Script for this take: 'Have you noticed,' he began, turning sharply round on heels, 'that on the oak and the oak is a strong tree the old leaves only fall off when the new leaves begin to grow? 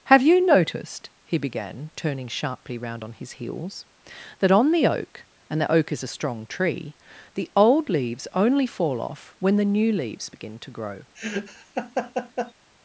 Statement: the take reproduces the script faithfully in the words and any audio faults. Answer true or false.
false